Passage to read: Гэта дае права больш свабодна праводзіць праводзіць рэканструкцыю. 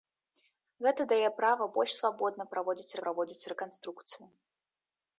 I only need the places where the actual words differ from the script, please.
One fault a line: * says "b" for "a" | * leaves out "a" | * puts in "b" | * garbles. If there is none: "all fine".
all fine